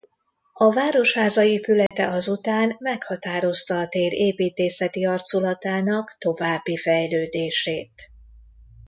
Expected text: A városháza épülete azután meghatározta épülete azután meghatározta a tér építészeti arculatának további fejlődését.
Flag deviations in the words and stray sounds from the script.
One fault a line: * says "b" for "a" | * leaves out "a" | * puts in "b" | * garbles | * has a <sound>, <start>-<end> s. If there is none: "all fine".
* has a dropout, 1.9-1.9 s
* leaves out "épülete azután meghatározta"